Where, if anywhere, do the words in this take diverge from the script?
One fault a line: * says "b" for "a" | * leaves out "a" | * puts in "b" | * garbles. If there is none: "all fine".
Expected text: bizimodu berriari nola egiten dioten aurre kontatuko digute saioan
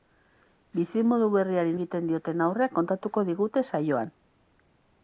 * leaves out "nola"